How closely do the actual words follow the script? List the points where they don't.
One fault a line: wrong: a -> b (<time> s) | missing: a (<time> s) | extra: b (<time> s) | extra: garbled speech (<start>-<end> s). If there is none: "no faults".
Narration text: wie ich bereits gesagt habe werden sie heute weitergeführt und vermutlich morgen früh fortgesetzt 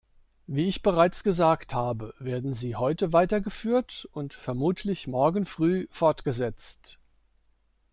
no faults